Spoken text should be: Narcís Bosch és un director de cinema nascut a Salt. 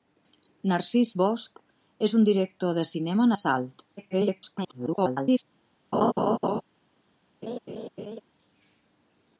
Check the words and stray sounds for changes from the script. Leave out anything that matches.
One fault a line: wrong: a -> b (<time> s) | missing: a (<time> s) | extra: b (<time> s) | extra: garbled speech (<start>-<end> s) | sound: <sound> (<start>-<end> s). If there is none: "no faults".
missing: nascut (3.3 s)
extra: garbled speech (4.0-5.4 s)
sound: laugh (5.9-6.6 s)
sound: laugh (7.4-8.2 s)